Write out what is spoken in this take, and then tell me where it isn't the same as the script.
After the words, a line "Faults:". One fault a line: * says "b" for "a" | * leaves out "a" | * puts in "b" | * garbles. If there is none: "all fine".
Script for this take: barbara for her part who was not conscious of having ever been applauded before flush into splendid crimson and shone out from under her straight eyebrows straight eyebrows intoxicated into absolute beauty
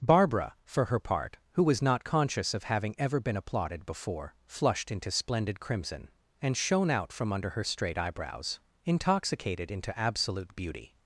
barbara for her part who was not conscious of having ever been applauded before flushed into splendid crimson and shone out from under her straight eyebrows intoxicated into absolute beauty
Faults:
* says "flushed" for "flush"
* leaves out "straight eyebrows"